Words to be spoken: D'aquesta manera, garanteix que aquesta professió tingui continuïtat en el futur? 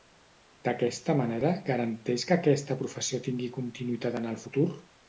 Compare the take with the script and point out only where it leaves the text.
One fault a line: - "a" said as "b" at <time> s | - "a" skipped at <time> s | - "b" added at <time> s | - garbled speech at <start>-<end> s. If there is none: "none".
none